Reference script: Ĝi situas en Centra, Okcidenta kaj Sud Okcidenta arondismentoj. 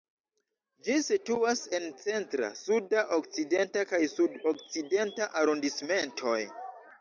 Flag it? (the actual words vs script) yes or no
yes